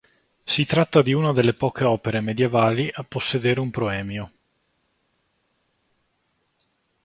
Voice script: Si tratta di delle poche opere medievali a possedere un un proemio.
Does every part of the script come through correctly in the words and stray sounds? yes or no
no